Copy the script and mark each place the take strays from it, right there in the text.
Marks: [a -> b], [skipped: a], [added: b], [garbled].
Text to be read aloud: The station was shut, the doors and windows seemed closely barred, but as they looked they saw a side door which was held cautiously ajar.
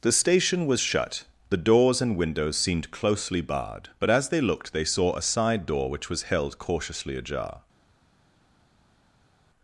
The station was shut, the doors and windows seemed closely barred, but as they looked they saw a side door which was held cautiously ajar.